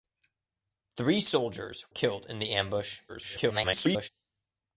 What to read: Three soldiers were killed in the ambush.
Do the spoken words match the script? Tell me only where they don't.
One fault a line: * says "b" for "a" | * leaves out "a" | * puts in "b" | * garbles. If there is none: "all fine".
* leaves out "were"
* garbles